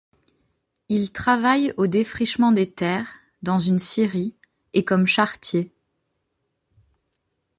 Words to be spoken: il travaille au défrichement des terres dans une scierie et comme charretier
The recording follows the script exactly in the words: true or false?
true